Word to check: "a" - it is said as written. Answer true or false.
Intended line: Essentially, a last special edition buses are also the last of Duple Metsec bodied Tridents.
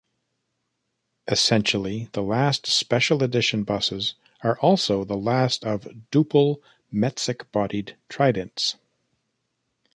false